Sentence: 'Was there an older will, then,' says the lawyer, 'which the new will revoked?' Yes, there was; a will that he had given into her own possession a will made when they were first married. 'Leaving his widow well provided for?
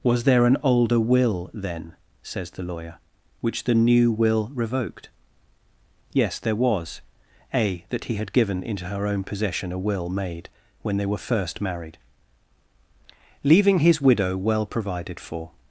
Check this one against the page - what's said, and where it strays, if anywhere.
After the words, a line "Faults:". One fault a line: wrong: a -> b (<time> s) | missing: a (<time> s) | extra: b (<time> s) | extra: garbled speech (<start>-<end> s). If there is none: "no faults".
'Was there an older will, then,' says the lawyer, 'which the new will revoked?' Yes, there was; a that he had given into her own possession a will made when they were first married. 'Leaving his widow well provided for?
Faults:
missing: will (7.8 s)